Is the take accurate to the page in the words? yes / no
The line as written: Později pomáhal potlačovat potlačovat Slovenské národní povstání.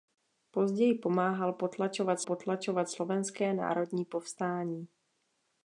yes